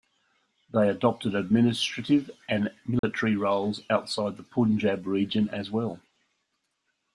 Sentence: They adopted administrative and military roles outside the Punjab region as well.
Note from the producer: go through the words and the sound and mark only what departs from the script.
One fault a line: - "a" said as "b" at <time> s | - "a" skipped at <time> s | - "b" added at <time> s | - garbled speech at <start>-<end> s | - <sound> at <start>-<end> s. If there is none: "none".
- dropout at 3.0-3.0 s